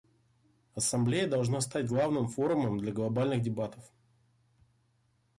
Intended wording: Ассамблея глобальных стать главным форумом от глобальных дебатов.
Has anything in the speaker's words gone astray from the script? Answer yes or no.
yes